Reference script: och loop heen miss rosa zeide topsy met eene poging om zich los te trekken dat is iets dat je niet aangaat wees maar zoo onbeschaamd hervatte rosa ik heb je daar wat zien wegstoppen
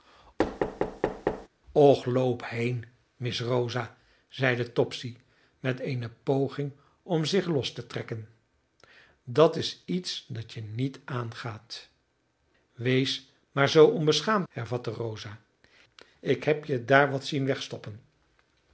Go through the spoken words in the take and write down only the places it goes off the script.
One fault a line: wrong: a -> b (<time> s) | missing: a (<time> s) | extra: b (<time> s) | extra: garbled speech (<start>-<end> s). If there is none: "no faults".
no faults